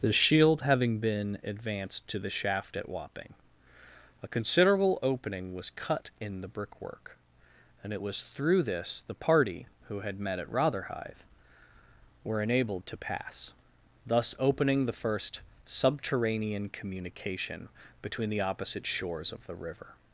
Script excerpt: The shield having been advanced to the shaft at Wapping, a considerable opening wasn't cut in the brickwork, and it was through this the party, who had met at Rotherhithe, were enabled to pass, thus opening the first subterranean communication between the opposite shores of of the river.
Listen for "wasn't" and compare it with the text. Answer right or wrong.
wrong